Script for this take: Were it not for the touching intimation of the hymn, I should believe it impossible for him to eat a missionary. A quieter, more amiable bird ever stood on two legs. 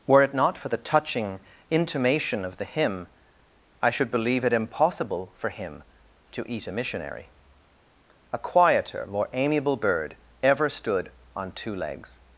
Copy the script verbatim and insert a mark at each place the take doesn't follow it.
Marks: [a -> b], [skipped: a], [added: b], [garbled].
Were it not for the touching intimation of the hymn, I should believe it impossible for him to eat a missionary. A quieter, more amiable bird ever stood on two legs.